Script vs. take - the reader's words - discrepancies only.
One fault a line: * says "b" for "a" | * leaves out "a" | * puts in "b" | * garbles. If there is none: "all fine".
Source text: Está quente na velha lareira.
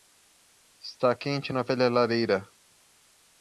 all fine